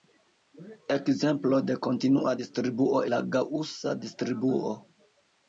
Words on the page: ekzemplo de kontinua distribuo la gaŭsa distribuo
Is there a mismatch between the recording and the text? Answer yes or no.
no